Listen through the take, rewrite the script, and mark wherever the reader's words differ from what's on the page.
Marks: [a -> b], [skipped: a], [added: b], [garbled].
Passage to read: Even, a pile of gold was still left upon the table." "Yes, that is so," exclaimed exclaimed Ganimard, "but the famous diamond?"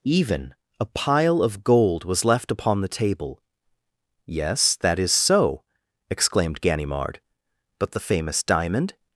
Even, a pile of gold was [skipped: still] left upon the table." "Yes, that is so," exclaimed [skipped: exclaimed] Ganimard, "but the famous diamond?"